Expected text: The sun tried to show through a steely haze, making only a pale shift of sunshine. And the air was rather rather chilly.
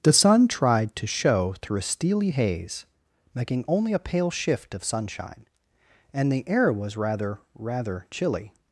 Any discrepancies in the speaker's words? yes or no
no